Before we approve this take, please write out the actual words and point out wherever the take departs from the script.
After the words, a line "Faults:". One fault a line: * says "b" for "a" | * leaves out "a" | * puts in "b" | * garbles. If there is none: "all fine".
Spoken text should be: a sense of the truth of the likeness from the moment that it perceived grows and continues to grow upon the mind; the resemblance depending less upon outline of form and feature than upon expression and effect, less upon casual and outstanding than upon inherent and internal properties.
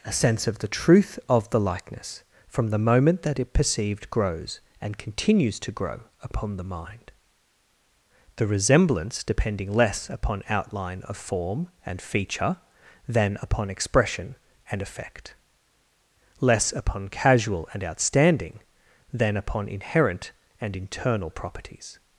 a sense of the truth of the likeness from the moment that it perceived grows and continues to grow upon the mind; the resemblance depending less upon outline of form and feature than upon expression and effect, less upon casual and outstanding than upon inherent and internal properties.
Faults:
all fine